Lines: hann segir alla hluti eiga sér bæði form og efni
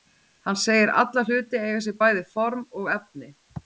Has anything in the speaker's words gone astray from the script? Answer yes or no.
no